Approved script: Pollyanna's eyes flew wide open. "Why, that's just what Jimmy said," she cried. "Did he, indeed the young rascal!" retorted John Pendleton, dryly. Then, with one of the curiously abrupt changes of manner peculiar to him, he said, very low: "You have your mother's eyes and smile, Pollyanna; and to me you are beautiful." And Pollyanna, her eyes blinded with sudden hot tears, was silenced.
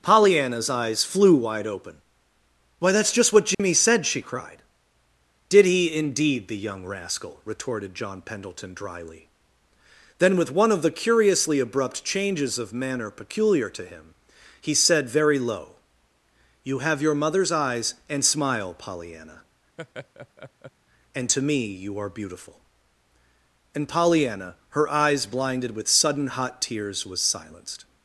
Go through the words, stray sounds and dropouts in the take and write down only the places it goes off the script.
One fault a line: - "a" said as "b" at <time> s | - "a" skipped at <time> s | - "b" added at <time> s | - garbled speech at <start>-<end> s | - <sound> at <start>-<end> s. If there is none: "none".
- dropout at 3.5-3.6 s
- laugh at 19.8-20.7 s